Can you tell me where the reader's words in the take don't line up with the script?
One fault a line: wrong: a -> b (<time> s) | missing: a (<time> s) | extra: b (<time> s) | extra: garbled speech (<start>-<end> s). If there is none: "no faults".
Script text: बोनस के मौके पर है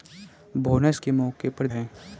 no faults